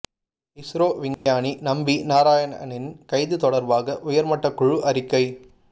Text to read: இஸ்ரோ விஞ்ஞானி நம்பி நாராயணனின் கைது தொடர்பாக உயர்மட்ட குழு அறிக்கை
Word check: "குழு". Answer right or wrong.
right